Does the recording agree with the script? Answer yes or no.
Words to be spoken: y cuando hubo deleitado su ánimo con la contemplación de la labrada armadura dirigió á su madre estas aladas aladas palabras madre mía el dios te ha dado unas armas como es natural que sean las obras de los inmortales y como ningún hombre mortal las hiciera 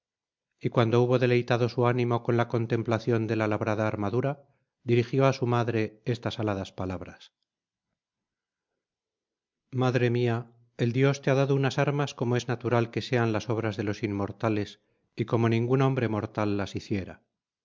no